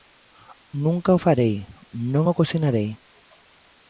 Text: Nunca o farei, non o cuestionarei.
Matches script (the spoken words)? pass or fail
pass